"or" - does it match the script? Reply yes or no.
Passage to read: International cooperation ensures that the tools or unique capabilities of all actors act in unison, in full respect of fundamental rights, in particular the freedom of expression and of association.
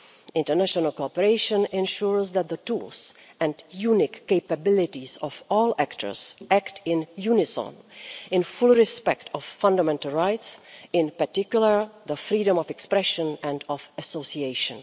no